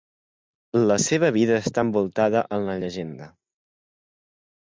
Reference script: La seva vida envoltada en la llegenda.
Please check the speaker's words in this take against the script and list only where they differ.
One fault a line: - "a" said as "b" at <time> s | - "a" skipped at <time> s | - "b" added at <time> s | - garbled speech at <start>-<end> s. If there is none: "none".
- "està" added at 1.6 s